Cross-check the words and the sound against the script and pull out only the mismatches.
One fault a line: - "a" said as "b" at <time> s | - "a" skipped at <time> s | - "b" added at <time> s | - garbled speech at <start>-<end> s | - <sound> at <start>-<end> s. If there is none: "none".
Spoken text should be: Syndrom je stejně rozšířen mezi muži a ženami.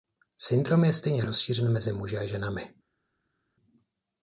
none